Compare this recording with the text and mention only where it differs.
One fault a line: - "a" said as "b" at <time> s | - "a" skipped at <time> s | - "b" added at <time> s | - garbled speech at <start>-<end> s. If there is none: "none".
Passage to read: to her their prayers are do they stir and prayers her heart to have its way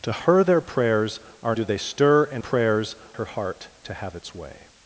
none